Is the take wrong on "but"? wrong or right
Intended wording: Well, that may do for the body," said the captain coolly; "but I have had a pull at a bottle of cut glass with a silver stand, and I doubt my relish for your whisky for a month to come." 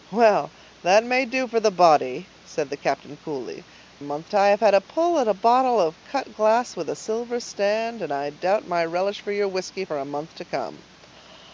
wrong